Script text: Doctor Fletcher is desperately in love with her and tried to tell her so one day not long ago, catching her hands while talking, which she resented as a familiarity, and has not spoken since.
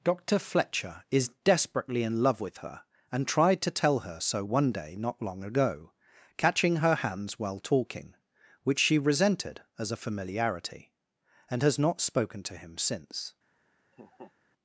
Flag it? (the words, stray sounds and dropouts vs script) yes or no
yes